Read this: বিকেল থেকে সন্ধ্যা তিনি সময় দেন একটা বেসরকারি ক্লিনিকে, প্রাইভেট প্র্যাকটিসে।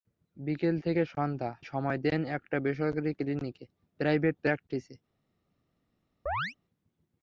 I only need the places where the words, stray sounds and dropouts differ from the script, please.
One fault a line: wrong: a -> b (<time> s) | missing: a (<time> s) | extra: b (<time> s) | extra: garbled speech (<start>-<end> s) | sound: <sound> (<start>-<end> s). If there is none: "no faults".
missing: তিনি (1.5 s)
sound: chirp (6.3-6.5 s)